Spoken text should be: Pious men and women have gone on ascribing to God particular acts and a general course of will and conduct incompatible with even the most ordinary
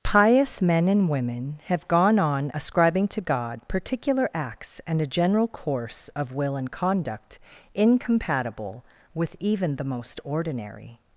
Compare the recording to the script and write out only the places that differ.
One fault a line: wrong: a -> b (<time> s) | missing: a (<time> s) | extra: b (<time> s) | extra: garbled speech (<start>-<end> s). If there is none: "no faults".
no faults